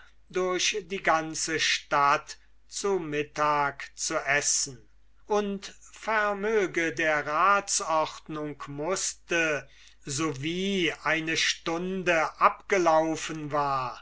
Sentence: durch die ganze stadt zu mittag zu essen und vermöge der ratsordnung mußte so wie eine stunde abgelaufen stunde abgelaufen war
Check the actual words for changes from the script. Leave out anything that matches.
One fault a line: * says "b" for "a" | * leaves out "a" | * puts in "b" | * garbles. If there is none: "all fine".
* leaves out "stunde abgelaufen"